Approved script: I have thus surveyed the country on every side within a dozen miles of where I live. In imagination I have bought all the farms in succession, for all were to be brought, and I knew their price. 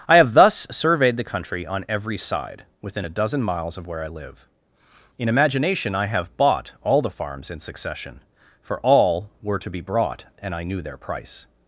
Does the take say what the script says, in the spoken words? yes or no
yes